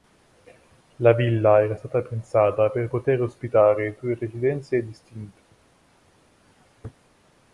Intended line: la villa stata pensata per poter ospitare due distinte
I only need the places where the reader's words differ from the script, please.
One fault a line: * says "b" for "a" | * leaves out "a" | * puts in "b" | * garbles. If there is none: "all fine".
* puts in "era"
* puts in "residenze"